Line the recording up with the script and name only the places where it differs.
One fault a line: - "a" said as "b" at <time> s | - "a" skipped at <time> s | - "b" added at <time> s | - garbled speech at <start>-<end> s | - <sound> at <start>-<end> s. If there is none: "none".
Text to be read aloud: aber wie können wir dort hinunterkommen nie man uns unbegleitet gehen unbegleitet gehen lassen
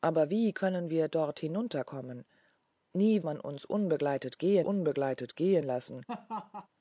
- laugh at 6.1-6.7 s